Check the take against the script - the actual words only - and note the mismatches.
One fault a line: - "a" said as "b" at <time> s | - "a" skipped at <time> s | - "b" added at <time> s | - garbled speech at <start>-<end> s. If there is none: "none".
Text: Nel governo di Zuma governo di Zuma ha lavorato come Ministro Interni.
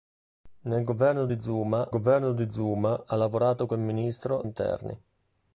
none